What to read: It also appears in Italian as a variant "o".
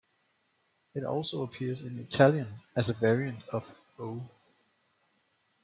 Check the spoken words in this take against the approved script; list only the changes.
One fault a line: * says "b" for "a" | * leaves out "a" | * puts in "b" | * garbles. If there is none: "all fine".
* puts in "of"